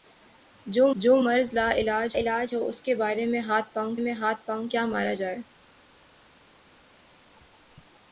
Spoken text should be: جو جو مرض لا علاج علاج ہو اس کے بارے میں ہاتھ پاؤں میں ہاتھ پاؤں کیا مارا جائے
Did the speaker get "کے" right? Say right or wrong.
right